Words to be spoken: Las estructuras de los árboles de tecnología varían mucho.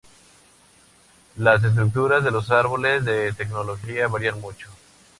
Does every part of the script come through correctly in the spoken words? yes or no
yes